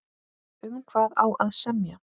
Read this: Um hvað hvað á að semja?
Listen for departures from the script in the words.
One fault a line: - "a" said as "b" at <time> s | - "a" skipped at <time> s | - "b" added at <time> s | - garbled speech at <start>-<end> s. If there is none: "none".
- "hvað" skipped at 1.1 s